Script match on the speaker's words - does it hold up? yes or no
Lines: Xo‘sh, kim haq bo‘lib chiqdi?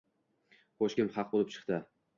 yes